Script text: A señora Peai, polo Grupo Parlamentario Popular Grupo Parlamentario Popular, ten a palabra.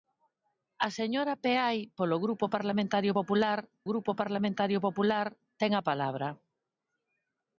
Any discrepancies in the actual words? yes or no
no